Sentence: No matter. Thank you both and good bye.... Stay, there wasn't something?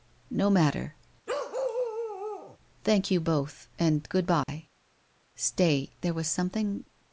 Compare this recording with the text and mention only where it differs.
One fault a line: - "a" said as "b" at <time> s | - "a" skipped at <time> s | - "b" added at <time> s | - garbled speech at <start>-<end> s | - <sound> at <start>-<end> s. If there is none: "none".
- bark at 1.3-2.6 s
- dropout at 4.4-4.5 s
- "wasn't" said as "was" at 6.1 s